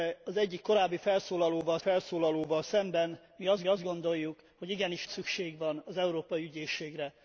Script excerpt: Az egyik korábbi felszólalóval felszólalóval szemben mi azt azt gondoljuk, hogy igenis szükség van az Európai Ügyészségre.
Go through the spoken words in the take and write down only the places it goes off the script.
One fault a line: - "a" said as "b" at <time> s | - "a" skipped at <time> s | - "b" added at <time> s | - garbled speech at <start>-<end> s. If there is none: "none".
none